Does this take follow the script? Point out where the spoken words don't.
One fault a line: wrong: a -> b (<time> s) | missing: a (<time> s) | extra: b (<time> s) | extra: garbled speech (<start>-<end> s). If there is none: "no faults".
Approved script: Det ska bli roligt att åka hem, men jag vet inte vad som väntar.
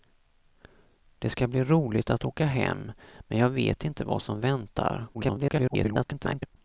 extra: garbled speech (5.1-6.6 s)